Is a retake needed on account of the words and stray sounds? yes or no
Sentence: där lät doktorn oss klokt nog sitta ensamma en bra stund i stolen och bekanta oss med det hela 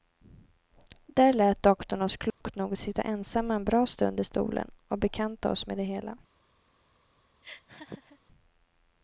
yes